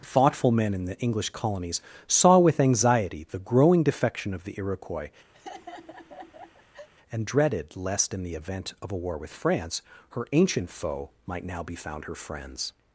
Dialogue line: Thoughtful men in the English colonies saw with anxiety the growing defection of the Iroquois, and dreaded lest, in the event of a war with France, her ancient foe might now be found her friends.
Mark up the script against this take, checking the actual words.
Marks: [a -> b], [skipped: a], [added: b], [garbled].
Thoughtful men in the English colonies saw with anxiety the growing defection of the Iroquois, and dreaded lest, in the event of a war with France, her ancient foe might now be found her friends.